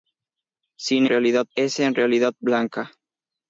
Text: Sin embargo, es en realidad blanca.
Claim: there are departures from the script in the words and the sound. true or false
true